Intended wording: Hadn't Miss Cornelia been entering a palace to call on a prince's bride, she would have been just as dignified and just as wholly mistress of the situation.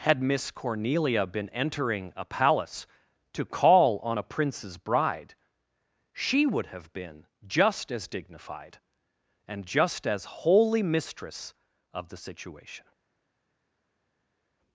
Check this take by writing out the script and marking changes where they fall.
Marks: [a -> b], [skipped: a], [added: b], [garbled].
[Hadn't -> Had] Miss Cornelia been entering a palace to call on a prince's bride, she would have been just as dignified and just as wholly mistress of the situation.